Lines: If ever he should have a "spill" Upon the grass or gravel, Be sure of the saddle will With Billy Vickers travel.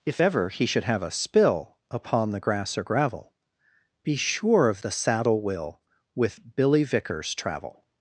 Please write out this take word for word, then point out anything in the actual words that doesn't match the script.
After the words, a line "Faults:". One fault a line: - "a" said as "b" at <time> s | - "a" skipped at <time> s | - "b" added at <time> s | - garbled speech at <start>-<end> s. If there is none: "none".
If ever he should have a "spill" Upon the grass or gravel, Be sure of the saddle will With Billy Vickers travel.
Faults:
none